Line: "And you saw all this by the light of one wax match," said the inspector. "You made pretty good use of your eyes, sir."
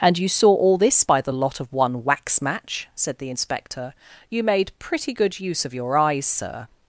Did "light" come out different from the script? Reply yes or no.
yes